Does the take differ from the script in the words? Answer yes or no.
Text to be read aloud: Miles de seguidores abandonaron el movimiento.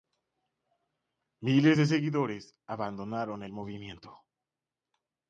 no